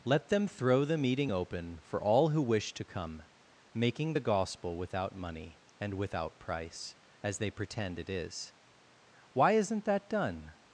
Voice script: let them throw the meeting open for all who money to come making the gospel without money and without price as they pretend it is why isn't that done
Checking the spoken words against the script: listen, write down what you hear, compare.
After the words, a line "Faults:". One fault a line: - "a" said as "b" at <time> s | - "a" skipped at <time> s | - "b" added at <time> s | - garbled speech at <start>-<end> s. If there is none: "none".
let them throw the meeting open for all who wish to come making the gospel without money and without price as they pretend it is why isn't that done
Faults:
- "money" said as "wish" at 2.4 s